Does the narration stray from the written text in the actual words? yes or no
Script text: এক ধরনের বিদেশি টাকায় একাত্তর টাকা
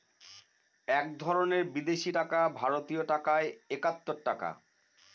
yes